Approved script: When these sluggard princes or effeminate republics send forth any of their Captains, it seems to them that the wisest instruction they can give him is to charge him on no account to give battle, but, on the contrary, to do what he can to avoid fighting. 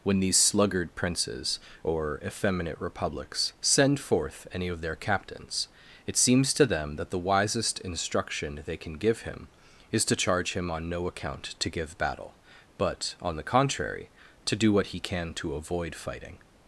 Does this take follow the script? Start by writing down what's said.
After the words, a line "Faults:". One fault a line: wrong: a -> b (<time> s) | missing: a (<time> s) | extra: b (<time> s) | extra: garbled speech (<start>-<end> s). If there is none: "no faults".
When these sluggard princes or effeminate republics send forth any of their Captains, it seems to them that the wisest instruction they can give him is to charge him on no account to give battle, but, on the contrary, to do what he can to avoid fighting.
Faults:
no faults